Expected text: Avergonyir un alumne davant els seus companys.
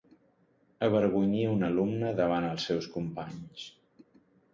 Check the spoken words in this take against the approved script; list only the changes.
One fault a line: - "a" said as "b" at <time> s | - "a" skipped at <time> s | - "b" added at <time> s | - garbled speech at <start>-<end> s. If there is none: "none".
none